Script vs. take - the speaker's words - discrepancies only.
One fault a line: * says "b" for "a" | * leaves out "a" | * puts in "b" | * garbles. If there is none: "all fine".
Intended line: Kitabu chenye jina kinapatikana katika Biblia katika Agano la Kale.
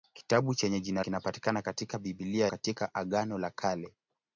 all fine